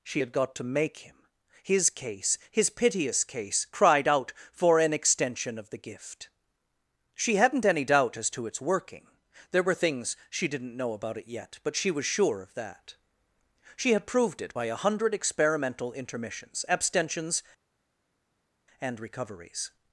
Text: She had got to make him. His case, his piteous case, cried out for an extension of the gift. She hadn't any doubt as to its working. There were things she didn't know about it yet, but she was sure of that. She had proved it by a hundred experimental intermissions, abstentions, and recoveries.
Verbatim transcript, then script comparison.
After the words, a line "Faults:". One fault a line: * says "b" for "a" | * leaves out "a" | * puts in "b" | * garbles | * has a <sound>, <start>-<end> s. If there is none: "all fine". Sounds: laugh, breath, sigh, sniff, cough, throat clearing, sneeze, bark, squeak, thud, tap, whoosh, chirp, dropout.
She had got to make him. His case, his piteous case, cried out for an extension of the gift. She hadn't any doubt as to its working. There were things she didn't know about it yet, but she was sure of that. She had proved it by a hundred experimental intermissions, abstentions, and recoveries.
Faults:
all fine